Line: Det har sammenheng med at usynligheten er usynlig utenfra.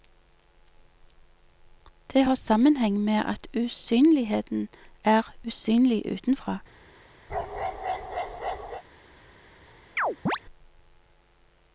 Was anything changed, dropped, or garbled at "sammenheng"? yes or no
no